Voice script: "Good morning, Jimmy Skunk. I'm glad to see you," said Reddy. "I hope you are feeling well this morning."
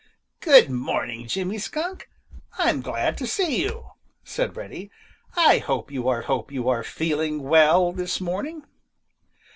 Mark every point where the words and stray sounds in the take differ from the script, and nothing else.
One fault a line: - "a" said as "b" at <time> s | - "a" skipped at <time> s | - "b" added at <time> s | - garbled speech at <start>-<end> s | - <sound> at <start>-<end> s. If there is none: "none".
- "hope you are" added at 6.2 s